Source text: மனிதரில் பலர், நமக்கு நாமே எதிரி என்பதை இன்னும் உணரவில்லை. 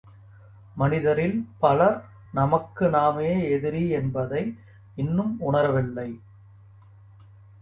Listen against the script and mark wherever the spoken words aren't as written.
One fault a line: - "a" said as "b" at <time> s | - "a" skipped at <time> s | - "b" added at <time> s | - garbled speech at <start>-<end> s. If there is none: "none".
none